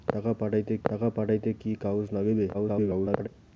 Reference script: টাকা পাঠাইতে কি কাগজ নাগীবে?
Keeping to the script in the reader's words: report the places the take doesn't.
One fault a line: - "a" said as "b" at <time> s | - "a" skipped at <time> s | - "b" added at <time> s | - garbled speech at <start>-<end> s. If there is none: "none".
- "টাকা পাঠাইতে" added at 0.8 s
- garbled speech at 2.5-3.3 s